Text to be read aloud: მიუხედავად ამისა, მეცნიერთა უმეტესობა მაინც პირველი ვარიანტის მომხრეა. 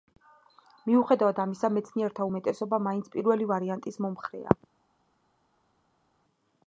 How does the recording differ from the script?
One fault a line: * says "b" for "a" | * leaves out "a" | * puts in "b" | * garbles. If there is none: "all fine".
all fine